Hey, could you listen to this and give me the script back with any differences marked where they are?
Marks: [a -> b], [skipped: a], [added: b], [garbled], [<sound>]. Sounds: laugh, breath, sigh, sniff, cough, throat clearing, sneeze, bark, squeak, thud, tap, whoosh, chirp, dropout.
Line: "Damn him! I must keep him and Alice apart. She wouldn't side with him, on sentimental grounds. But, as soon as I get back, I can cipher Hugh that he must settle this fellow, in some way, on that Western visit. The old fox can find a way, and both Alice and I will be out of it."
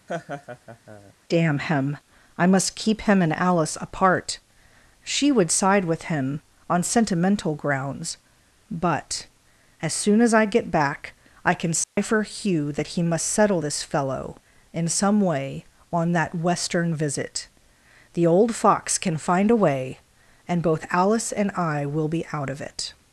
[laugh] "Damn him! I must keep him and Alice apart. She [wouldn't -> would] side with him, on sentimental grounds. But, as soon as I get back, I can cipher [dropout] Hugh that he must settle this fellow, in some way, on that Western visit. The old fox can find a way, and both Alice and I will be out of it."